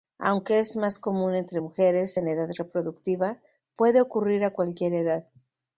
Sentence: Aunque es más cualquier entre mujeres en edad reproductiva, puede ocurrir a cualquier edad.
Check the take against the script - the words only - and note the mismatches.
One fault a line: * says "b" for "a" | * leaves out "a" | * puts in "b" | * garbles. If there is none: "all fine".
* says "común" for "cualquier"